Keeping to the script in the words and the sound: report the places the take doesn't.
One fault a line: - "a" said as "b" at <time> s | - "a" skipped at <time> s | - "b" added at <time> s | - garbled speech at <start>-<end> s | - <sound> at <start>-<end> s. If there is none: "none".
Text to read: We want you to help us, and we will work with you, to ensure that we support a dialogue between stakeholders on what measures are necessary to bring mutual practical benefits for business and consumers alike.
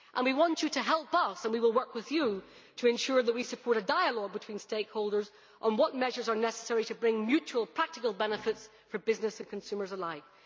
none